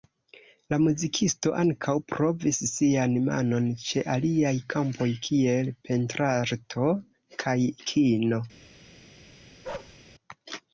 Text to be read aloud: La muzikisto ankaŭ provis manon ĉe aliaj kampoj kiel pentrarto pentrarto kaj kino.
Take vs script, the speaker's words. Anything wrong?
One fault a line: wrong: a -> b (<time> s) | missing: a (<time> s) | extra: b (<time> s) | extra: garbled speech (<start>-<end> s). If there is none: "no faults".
extra: sian (2.7 s)
missing: pentrarto (6.9 s)